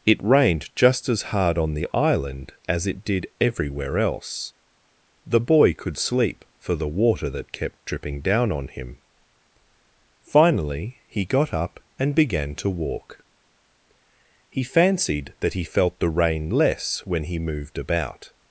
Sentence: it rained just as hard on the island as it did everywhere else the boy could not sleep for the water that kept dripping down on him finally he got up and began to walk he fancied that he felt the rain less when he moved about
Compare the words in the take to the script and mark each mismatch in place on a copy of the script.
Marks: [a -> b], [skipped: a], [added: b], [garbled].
it rained just as hard on the island as it did everywhere else the boy could [skipped: not] sleep for the water that kept dripping down on him finally he got up and began to walk he fancied that he felt the rain less when he moved about